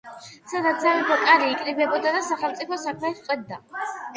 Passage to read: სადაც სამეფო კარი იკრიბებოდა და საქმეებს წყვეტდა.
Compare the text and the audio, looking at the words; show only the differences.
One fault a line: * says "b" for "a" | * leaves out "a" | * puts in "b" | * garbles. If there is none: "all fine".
* puts in "სახელმწიფო"